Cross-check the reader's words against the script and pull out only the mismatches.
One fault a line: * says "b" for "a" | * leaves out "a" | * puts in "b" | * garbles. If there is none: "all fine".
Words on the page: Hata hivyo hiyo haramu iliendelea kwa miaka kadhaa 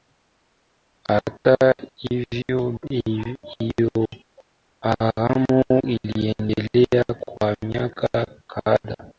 all fine